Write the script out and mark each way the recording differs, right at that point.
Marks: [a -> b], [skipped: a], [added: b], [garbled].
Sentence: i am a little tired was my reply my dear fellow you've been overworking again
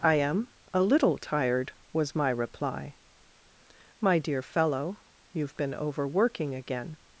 i am a little tired was my reply my dear fellow you've been overworking again